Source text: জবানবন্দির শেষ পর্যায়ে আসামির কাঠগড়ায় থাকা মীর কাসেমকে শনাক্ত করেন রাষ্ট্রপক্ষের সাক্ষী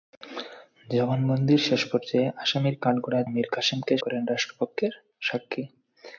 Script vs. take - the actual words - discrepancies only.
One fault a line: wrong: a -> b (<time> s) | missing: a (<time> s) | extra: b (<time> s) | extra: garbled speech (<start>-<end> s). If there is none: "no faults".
missing: থাকা (3.3 s)
missing: শনাক্ত (3.9 s)